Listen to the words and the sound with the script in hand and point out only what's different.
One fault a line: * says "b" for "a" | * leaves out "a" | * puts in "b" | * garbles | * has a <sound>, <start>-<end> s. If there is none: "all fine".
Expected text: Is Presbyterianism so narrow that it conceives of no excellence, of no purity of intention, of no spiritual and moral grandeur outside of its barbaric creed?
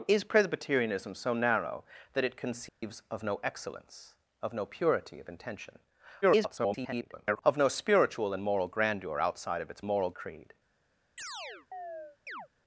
* has a dropout, 2.7-2.8 s
* garbles
* says "moral" for "barbaric"
* has a chirp, 11.2-12.5 s